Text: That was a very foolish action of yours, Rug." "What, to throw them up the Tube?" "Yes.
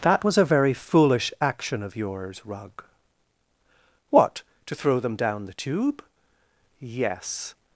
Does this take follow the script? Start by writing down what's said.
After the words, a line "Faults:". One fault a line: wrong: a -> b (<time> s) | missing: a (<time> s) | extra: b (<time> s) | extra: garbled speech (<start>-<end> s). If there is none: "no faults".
That was a very foolish action of yours, Rug." "What, to throw them down the Tube?" "Yes.
Faults:
wrong: up -> down (5.1 s)